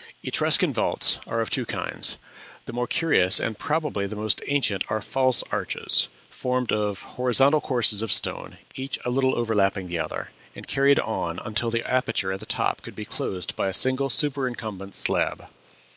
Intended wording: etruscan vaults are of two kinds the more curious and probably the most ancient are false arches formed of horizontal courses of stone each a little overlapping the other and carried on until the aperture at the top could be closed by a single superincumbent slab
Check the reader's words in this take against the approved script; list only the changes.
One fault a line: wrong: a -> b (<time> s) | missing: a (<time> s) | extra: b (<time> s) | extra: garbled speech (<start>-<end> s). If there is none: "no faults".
no faults